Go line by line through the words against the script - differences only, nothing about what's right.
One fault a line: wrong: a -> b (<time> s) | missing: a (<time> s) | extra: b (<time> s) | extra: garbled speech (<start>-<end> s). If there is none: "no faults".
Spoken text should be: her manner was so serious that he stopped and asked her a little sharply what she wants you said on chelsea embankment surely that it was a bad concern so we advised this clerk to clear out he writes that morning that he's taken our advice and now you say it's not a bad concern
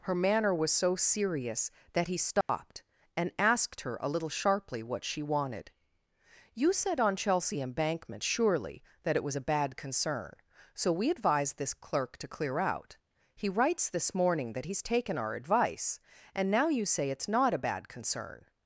wrong: wants -> wanted (5.2 s)
wrong: that -> this (13.9 s)